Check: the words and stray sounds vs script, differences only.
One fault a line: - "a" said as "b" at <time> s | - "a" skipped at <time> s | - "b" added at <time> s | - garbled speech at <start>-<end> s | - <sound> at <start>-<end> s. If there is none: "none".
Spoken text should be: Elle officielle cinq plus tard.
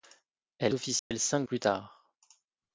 - dropout at 1.0-1.1 s